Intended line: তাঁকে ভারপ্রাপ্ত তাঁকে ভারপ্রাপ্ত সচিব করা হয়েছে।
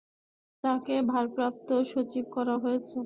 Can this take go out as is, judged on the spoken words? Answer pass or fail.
fail